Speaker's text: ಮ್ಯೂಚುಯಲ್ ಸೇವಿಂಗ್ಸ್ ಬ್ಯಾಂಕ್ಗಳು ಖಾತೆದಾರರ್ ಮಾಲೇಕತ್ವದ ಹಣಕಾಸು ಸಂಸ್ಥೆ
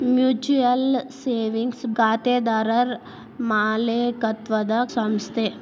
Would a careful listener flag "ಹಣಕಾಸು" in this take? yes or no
yes